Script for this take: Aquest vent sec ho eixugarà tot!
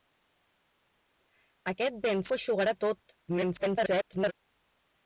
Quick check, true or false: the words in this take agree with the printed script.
false